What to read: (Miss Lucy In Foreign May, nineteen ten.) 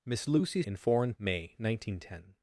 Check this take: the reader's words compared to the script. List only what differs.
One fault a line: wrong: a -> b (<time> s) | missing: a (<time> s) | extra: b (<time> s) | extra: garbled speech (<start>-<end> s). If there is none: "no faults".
no faults